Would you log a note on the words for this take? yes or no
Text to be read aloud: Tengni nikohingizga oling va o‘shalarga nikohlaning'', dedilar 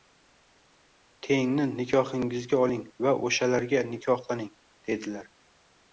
no